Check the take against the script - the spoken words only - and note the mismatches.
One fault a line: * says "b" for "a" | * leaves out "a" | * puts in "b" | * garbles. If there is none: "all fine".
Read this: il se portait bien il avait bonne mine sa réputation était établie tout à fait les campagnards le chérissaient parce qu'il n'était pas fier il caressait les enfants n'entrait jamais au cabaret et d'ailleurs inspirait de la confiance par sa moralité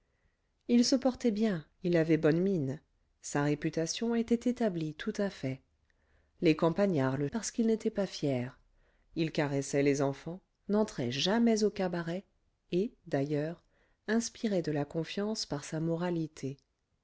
* leaves out "chérissaient"